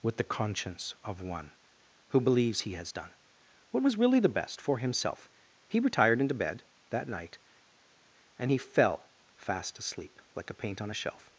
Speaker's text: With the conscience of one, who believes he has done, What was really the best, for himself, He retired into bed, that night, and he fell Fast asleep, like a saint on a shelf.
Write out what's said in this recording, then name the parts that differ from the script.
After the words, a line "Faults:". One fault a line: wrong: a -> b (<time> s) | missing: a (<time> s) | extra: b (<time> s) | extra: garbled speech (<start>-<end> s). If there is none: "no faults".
With the conscience of one, who believes he has done, What was really the best, for himself, He retired into bed, that night, and he fell Fast asleep, like a paint on a shelf.
Faults:
wrong: saint -> paint (10.5 s)